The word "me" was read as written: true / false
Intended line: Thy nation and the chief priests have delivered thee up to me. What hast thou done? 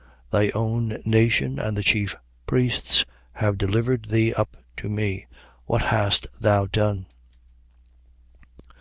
true